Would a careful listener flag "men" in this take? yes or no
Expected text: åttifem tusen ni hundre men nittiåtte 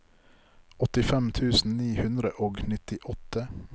yes